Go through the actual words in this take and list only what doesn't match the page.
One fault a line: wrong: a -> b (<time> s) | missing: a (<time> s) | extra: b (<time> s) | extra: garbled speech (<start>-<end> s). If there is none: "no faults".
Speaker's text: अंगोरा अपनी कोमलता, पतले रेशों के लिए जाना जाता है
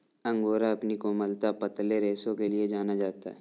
no faults